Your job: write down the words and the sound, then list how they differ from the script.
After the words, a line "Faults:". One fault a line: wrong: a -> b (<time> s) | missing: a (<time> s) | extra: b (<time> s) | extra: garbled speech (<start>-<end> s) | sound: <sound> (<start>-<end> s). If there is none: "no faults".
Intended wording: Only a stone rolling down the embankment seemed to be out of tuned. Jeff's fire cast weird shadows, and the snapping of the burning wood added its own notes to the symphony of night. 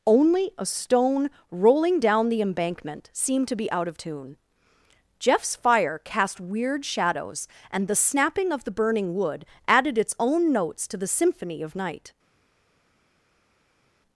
Only a stone rolling down the embankment seemed to be out of tune. Jeff's fire cast weird shadows, and the snapping of the burning wood added its own notes to the symphony of night.
Faults:
wrong: tuned -> tune (4.0 s)